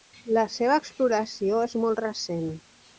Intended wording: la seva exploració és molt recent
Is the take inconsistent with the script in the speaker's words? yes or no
no